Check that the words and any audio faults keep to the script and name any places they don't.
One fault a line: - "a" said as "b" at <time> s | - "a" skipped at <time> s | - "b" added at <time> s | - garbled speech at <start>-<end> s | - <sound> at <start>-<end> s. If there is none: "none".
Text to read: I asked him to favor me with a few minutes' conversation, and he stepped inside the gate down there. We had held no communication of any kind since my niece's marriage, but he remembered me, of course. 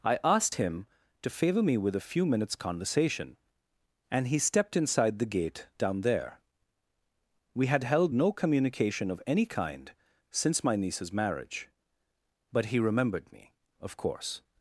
none